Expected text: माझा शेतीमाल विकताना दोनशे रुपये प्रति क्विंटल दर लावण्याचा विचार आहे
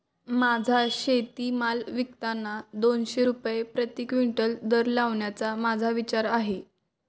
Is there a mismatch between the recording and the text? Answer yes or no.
yes